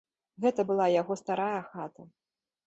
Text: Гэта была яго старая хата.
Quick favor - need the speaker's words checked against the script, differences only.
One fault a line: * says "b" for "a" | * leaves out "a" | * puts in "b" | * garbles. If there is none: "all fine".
all fine